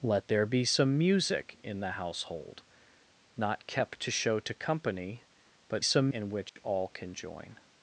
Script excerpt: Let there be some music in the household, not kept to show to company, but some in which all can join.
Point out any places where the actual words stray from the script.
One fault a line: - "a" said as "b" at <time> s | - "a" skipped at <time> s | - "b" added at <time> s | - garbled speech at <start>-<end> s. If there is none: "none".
none